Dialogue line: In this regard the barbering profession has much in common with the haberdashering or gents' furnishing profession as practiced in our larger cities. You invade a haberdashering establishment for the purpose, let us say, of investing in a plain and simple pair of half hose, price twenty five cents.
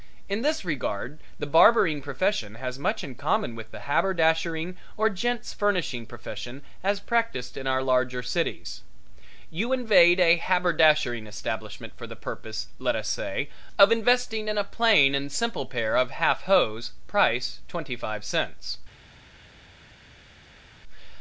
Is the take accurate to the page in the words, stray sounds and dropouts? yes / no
yes